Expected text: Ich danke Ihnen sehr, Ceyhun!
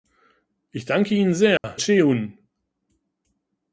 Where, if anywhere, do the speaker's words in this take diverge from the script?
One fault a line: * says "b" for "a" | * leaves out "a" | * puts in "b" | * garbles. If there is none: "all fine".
all fine